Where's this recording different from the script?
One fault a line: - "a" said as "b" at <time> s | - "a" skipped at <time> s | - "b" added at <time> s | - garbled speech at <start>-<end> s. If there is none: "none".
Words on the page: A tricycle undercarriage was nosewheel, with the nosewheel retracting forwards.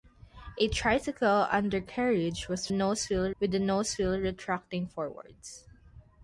none